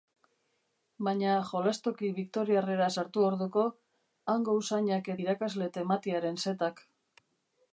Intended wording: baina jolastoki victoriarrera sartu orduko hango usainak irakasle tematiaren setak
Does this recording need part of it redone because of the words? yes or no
no